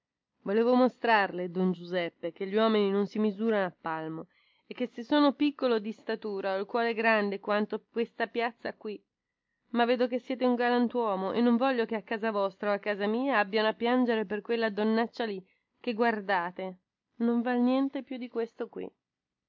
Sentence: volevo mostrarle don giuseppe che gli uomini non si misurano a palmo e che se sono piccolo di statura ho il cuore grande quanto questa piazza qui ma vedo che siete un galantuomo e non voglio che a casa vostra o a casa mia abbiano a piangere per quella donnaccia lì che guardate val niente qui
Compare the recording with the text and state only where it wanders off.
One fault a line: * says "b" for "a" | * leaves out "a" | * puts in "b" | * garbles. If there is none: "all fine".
* puts in "non"
* puts in "più di questo"